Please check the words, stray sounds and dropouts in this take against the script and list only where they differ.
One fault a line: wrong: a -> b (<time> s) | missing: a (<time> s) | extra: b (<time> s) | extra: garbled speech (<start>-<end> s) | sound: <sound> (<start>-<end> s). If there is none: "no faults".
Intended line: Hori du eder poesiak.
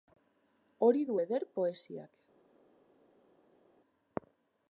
no faults